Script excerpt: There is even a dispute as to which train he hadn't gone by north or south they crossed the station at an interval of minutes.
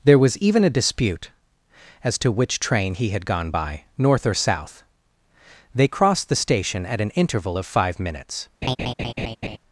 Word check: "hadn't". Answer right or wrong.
wrong